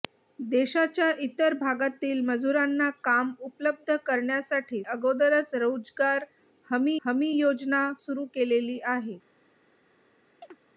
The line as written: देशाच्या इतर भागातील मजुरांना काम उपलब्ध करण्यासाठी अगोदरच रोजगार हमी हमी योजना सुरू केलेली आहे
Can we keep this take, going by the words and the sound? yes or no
no